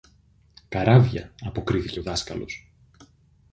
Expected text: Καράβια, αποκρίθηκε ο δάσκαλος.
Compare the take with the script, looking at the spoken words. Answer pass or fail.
pass